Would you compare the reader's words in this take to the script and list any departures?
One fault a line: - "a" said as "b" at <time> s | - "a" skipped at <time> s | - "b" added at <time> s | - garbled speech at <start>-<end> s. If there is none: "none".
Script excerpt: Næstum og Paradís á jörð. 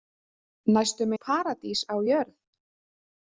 none